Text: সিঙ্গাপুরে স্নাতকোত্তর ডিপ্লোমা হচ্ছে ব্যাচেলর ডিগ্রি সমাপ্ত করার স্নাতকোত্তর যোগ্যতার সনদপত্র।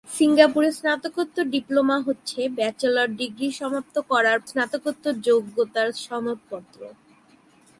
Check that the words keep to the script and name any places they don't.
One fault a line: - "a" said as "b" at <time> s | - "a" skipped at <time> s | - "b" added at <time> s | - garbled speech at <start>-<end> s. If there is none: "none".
none